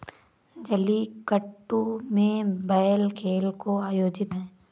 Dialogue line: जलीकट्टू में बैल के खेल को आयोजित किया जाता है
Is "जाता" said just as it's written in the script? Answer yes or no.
no